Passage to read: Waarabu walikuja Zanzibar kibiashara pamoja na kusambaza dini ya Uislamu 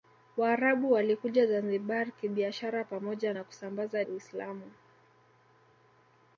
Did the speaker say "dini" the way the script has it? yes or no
no